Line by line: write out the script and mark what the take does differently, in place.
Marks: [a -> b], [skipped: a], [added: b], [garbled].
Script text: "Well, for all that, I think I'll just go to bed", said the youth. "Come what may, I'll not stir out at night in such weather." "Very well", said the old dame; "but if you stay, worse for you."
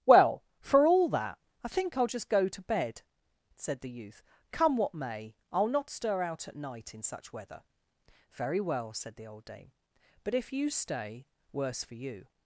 "Well, for all that, I think I'll just go to bed", said the youth. "Come what may, I'll not stir out at night in such weather." "Very well", said the old dame; "but if you stay, worse for you."